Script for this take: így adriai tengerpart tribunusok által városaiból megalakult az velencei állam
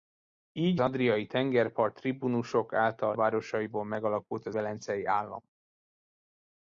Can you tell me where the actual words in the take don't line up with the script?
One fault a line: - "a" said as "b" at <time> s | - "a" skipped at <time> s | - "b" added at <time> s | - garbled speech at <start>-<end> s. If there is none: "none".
none